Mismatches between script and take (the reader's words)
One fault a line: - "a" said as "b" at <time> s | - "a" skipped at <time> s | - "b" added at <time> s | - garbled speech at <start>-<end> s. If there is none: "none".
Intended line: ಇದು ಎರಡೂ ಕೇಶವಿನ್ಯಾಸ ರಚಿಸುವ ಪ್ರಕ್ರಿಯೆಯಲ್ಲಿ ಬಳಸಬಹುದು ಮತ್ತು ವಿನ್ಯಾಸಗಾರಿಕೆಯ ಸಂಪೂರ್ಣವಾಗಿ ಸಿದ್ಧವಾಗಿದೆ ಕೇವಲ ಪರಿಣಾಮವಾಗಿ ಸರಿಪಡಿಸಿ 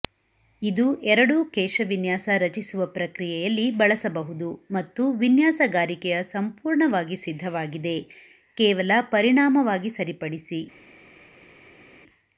none